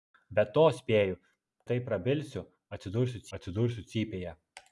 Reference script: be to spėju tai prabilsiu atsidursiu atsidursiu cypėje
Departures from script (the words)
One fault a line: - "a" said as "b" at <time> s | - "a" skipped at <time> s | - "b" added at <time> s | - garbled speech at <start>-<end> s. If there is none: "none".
none